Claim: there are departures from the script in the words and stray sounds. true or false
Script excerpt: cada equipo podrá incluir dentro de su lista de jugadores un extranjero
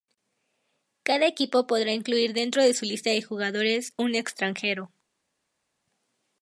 false